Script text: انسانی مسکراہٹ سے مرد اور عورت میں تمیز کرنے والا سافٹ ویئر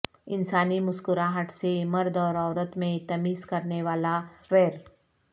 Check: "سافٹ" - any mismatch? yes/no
yes